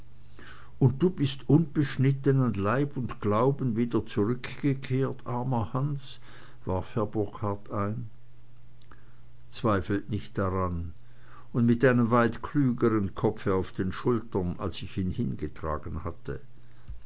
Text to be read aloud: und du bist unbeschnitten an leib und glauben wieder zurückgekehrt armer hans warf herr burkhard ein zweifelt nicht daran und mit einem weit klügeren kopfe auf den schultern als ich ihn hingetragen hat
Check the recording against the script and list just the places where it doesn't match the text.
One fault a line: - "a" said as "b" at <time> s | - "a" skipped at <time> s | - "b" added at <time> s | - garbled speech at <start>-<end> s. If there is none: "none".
- "hat" said as "hatte" at 16.0 s